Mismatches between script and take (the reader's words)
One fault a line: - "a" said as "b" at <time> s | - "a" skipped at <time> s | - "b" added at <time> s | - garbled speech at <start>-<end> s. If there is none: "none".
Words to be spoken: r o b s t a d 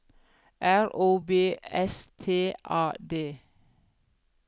none